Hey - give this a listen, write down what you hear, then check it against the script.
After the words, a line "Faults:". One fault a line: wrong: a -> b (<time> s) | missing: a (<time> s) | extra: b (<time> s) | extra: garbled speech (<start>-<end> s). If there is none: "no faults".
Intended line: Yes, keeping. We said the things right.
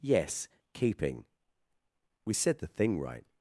Yes, keeping. We said the thing right.
Faults:
wrong: things -> thing (2.7 s)